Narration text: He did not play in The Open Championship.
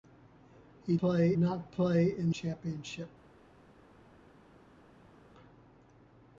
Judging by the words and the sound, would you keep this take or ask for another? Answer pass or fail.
fail